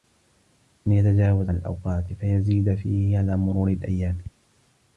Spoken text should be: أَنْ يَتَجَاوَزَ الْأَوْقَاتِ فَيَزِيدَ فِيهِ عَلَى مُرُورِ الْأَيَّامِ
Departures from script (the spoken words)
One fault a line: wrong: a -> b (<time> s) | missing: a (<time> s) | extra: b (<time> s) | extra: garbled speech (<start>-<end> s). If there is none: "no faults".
no faults